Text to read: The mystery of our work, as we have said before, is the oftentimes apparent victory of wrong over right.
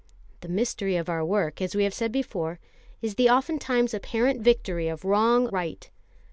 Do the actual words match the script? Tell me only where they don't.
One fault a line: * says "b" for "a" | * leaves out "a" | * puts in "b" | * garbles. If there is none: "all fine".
* leaves out "over"